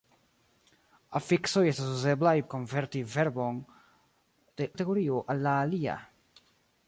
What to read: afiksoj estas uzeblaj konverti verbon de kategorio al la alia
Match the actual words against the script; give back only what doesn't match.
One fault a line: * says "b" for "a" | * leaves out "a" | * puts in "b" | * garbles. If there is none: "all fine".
all fine